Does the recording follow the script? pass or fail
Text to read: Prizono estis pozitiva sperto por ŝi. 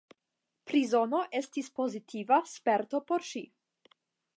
pass